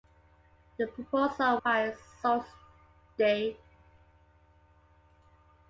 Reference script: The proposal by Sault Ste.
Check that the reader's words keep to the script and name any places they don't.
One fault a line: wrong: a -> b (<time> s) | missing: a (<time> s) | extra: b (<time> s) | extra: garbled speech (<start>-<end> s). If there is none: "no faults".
no faults